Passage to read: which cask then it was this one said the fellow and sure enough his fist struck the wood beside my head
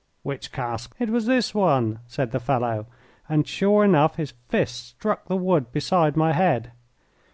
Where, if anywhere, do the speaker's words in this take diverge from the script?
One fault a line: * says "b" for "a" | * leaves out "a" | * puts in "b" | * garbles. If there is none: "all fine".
* leaves out "then"